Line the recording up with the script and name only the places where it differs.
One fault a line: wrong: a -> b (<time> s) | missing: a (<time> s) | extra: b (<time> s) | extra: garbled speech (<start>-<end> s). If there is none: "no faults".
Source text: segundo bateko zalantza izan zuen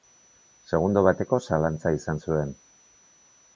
no faults